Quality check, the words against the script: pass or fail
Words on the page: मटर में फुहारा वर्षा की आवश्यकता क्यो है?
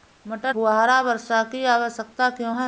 fail